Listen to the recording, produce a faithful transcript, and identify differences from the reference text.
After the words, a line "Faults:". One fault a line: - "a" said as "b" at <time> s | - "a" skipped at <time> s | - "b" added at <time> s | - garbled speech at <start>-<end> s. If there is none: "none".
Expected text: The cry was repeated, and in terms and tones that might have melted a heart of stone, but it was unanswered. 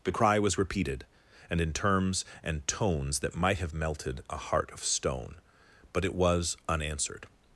The cry was repeated, and in terms and tones that might have melted a heart of stone, but it was unanswered.
Faults:
none